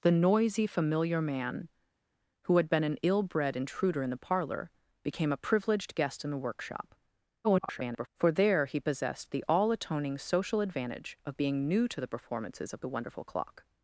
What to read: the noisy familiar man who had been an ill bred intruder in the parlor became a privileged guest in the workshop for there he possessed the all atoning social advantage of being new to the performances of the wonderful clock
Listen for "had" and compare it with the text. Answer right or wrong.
right